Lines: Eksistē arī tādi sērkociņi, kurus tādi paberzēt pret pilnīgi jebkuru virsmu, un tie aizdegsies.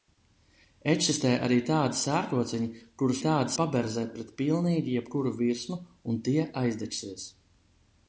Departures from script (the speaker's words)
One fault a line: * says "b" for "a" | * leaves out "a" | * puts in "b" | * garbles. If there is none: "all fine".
all fine